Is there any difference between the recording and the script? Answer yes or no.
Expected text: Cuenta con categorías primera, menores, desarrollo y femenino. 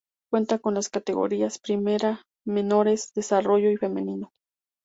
yes